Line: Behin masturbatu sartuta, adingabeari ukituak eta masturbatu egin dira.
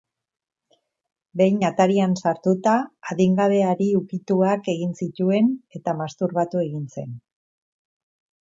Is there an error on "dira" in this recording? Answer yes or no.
yes